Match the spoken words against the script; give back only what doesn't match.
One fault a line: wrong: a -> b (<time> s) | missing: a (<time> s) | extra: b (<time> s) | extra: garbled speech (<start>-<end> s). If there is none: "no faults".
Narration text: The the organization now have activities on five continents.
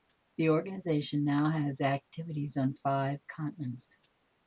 missing: the (0.5 s)
wrong: have -> has (1.5 s)